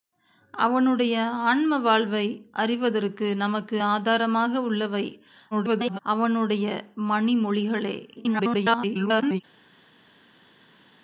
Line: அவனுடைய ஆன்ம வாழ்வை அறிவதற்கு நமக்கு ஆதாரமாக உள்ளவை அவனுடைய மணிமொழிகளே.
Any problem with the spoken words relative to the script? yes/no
yes